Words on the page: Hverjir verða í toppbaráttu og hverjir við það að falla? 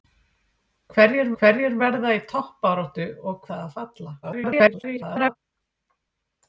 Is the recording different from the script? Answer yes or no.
yes